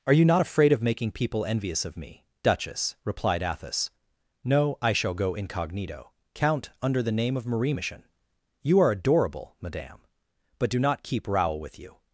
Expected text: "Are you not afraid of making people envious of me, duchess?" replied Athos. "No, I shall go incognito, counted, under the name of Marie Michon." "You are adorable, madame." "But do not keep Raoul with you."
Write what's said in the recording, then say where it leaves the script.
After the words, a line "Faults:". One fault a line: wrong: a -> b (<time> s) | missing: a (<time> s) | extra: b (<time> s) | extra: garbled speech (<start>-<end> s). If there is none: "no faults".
"Are you not afraid of making people envious of me, duchess?" replied Athos. "No, I shall go incognito, count, under the name of Marie Michon." "You are adorable, madame." "But do not keep Raoul with you."
Faults:
wrong: counted -> count (6.3 s)